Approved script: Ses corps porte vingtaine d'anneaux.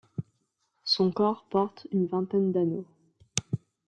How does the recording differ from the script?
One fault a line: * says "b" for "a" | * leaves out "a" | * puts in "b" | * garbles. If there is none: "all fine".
* says "Son" for "Ses"
* puts in "une"